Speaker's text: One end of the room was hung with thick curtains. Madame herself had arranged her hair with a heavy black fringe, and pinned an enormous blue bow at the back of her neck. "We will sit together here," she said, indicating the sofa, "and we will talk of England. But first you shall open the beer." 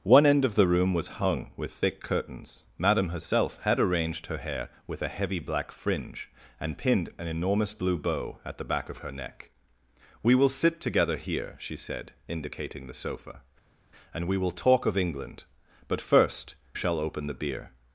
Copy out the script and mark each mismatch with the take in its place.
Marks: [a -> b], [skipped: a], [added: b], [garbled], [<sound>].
One end of the room was hung with thick curtains. Madame herself had arranged her hair with a heavy black fringe, and pinned an enormous blue bow at the back of her neck. "We will sit together here," she said, indicating the sofa, "and we will talk of England. But first [skipped: you] shall open the beer."